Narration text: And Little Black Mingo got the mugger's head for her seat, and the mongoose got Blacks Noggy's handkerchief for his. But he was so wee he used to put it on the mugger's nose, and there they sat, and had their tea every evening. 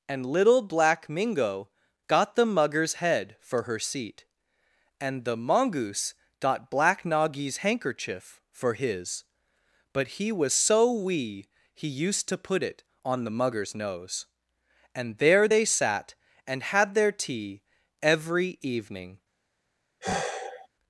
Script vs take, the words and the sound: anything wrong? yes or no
yes